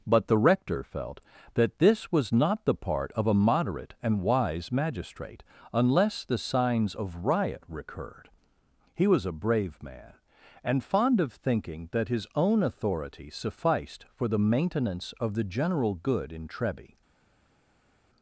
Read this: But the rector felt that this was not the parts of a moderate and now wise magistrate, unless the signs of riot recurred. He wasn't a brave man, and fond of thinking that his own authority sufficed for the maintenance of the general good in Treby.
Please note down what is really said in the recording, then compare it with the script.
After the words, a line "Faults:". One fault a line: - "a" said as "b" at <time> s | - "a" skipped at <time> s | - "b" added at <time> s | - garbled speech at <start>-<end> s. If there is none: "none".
But the rector felt that this was not the part of a moderate and wise magistrate, unless the signs of riot recurred. He was a brave man, and fond of thinking that his own authority sufficed for the maintenance of the general good in Treby.
Faults:
- "parts" said as "part" at 2.8 s
- "now" skipped at 4.2 s
- "wasn't" said as "was" at 9.1 s